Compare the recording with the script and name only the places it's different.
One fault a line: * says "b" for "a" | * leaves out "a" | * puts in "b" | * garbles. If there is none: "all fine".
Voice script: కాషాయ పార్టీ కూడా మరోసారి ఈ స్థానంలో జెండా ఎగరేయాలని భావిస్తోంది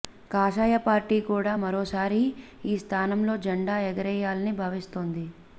all fine